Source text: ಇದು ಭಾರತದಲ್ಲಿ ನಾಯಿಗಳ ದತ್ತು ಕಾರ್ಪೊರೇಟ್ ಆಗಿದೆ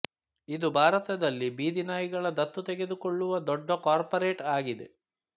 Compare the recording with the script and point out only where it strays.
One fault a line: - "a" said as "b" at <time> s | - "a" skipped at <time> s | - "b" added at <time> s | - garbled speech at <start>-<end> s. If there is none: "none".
- "ಬೀದಿ" added at 1.6 s
- "ತೆಗೆದುಕೊಳ್ಳುವ ದೊಡ್ಡ" added at 2.7 s